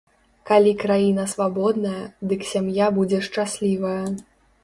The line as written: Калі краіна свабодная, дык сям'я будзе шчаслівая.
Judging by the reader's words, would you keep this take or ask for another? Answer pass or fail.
pass